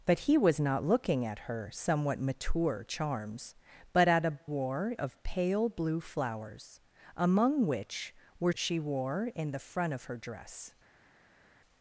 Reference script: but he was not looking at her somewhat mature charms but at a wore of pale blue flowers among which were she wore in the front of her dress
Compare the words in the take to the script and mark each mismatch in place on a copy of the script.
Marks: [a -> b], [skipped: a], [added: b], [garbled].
but he was not looking at her somewhat mature charms but at a wore of pale blue flowers among which were she wore in the front of her dress